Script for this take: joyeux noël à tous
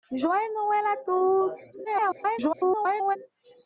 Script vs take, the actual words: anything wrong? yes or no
yes